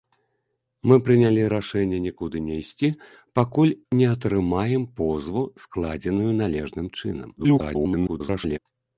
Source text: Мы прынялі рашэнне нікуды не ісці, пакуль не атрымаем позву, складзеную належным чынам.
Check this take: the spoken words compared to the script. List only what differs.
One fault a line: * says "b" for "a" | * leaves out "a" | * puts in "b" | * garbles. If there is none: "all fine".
* garbles